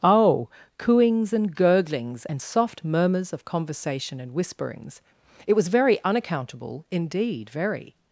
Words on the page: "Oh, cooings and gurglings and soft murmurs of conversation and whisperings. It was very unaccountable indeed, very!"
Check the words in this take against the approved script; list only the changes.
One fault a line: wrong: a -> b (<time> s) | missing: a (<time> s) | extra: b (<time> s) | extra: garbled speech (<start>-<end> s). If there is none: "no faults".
no faults